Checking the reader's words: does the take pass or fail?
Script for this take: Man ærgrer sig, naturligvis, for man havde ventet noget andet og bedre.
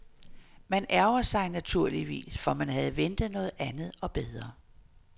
pass